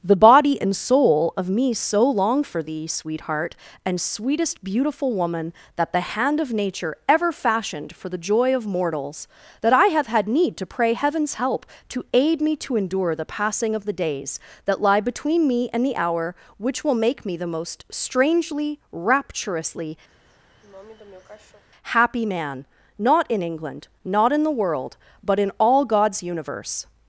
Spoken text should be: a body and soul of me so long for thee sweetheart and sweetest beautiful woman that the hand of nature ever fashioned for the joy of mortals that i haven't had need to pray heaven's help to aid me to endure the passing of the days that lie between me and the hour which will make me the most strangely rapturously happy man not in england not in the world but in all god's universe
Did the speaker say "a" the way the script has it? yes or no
no